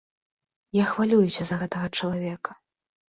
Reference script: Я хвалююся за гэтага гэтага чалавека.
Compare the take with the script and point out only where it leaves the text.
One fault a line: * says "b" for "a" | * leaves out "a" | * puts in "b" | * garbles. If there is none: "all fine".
* leaves out "гэтага"